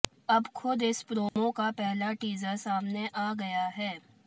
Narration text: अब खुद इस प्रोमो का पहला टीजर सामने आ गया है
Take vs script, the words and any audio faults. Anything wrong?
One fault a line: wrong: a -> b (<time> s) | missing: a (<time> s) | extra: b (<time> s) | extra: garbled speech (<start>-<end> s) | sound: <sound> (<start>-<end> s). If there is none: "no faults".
sound: dropout (1.3-1.4 s)